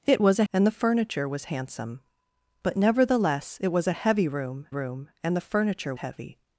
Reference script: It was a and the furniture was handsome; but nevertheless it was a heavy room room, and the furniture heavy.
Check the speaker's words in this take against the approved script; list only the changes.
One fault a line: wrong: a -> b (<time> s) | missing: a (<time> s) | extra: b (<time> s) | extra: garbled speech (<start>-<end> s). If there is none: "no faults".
no faults